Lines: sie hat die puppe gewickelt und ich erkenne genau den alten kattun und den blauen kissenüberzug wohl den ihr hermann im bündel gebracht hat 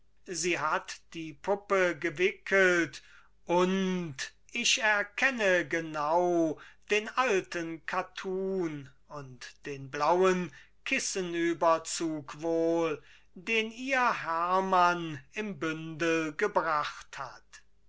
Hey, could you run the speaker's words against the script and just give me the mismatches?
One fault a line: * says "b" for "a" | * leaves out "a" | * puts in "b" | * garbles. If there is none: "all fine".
all fine